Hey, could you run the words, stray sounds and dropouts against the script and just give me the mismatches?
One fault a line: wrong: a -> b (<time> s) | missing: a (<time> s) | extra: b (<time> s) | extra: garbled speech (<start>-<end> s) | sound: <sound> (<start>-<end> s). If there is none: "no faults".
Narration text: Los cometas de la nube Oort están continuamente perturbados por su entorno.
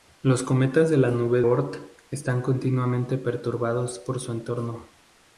no faults